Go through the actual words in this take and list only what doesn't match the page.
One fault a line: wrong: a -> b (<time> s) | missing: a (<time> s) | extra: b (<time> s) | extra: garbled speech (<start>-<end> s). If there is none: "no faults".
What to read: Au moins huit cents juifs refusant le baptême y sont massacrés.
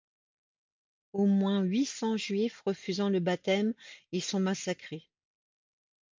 no faults